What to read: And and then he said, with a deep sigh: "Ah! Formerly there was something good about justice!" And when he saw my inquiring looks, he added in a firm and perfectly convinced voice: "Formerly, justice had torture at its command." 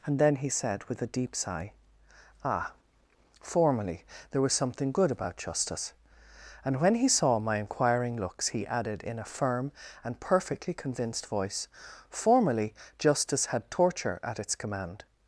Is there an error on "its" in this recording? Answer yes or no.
no